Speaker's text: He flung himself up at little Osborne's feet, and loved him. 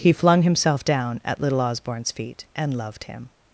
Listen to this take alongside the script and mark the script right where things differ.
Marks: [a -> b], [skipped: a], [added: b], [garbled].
He flung himself [up -> down] at little Osborne's feet, and loved him.